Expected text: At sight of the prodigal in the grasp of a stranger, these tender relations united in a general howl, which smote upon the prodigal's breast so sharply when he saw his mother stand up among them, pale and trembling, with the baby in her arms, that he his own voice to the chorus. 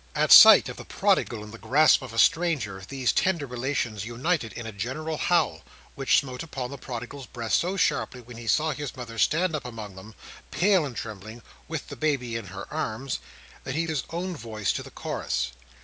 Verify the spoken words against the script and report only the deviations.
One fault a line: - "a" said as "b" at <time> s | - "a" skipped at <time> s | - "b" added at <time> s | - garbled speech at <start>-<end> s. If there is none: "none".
none